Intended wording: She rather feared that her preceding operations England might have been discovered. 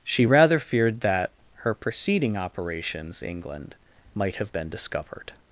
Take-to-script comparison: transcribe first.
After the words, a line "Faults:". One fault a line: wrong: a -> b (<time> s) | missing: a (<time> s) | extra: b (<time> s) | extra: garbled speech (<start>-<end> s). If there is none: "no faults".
She rather feared that her preceding operations England might have been discovered.
Faults:
no faults